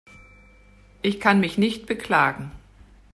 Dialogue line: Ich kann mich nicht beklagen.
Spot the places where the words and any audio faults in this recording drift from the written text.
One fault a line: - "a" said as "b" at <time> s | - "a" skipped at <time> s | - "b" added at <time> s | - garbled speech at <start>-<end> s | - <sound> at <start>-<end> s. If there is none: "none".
none